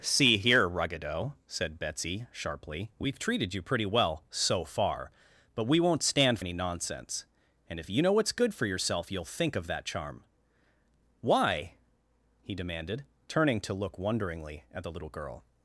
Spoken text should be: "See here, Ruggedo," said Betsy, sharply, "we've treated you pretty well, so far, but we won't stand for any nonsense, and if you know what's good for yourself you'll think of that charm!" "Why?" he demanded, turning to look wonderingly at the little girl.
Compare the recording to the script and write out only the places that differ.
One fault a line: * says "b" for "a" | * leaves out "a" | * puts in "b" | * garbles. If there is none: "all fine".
* leaves out "for"